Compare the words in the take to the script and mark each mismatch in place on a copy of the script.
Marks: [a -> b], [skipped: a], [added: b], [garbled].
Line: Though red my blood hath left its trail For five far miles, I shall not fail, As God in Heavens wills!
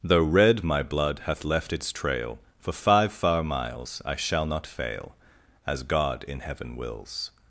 Though red my blood hath left its trail For five far miles, I shall not fail, As God in [Heavens -> Heaven] wills!